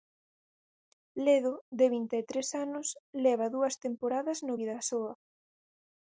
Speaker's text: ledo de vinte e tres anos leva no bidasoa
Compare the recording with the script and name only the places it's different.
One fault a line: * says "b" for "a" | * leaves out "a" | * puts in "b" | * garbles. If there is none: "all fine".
* puts in "dúas temporadas"